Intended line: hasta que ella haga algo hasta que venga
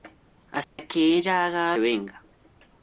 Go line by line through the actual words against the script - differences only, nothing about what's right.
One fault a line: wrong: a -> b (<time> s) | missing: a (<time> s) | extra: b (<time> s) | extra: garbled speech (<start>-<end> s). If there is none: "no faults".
missing: algo hasta que (1.7 s)